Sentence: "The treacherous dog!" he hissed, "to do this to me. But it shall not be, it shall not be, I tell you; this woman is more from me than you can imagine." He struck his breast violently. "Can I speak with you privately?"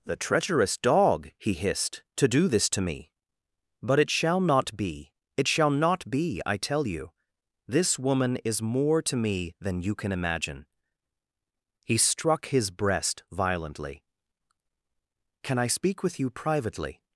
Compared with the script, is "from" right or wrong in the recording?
wrong